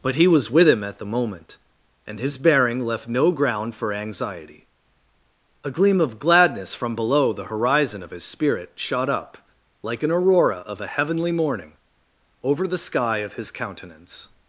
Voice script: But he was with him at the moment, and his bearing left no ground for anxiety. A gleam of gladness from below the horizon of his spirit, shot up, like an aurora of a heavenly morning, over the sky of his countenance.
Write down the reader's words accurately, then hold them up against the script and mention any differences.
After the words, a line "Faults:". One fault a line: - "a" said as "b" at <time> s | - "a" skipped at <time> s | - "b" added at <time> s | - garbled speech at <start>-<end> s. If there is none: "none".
But he was with him at the moment, and his bearing left no ground for anxiety. A gleam of gladness from below the horizon of his spirit, shot up, like an aurora of a heavenly morning, over the sky of his countenance.
Faults:
none